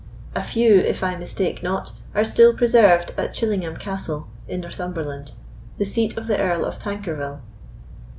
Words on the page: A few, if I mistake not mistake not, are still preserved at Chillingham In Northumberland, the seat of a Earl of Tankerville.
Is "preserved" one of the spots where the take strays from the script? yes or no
no